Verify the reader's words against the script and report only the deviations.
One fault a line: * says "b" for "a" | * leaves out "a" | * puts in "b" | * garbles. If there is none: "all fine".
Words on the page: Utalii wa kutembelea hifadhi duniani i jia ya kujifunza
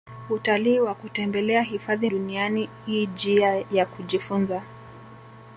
all fine